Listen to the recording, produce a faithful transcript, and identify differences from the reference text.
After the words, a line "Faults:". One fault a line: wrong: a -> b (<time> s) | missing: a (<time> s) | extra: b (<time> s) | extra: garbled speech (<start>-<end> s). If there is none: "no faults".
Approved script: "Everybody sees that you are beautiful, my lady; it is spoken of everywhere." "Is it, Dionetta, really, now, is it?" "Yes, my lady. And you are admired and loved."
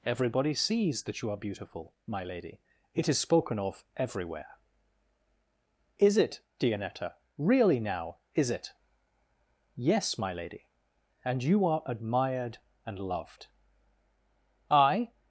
"Everybody sees that you are beautiful, my lady; it is spoken of everywhere." "Is it, Dionetta, really, now, is it?" "Yes, my lady. And you are admired and loved." "I
Faults:
extra: I (14.7 s)